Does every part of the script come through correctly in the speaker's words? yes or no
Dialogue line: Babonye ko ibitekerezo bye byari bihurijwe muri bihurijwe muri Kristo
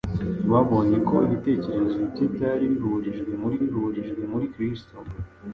yes